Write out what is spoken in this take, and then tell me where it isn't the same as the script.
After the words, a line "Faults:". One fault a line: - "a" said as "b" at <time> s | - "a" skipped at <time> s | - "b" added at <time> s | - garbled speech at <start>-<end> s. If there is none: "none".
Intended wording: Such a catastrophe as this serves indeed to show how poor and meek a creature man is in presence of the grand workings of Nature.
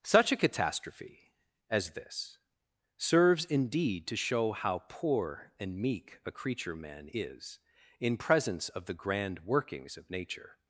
Such a catastrophe as this serves indeed to show how poor and meek a creature man is in presence of the grand workings of Nature.
Faults:
none